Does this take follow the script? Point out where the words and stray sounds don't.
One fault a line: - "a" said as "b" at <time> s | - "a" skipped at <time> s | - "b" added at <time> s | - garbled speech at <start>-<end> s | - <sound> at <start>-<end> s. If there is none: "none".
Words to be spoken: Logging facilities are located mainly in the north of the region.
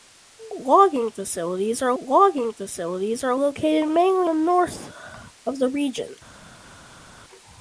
- "logging facilities are" added at 2.0 s
- "in" skipped at 4.3 s